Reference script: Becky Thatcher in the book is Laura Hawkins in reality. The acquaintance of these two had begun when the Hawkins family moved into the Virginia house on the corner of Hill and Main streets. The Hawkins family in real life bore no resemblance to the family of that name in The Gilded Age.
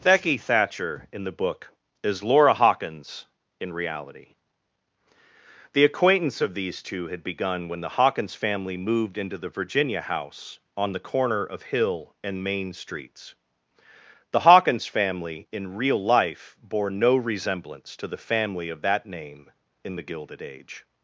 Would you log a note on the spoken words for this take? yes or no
no